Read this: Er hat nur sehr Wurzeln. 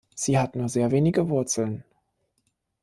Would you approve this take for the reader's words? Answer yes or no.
no